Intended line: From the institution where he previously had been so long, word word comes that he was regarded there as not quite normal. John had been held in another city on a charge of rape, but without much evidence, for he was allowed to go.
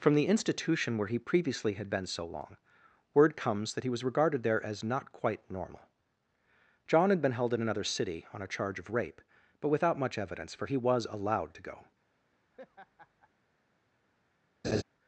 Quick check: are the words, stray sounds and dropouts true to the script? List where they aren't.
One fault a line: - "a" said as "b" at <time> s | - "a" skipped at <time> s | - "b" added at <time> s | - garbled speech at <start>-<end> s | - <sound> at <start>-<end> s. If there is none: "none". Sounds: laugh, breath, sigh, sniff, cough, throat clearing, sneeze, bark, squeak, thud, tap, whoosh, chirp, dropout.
- "word" skipped at 3.4 s
- laugh at 12.5-13.3 s
- laugh at 14.6-14.8 s